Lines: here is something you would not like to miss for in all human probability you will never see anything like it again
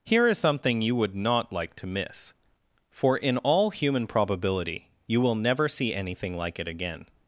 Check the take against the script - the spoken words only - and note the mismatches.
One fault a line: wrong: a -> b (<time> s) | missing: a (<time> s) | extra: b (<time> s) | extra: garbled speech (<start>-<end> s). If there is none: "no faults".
no faults